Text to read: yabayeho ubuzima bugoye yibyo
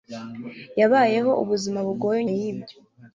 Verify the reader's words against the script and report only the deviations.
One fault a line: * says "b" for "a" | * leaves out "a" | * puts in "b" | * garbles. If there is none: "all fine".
all fine